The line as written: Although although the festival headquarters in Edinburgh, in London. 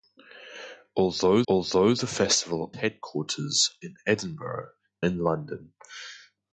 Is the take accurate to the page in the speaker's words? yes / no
yes